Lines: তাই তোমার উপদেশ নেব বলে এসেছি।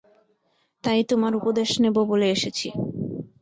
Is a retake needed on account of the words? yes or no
no